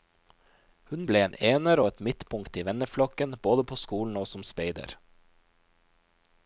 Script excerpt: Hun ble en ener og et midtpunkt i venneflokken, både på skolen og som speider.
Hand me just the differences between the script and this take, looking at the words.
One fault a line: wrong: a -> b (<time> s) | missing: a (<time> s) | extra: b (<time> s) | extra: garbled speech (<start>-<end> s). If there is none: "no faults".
no faults